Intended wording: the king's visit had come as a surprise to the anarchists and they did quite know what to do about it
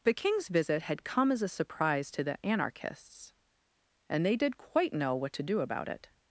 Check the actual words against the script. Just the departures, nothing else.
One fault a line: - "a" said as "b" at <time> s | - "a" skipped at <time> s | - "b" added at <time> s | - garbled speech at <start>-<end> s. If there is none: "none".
none